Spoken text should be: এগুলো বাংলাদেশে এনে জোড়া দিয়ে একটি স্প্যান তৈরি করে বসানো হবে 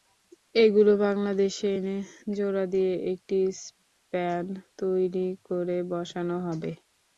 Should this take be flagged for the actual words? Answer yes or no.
no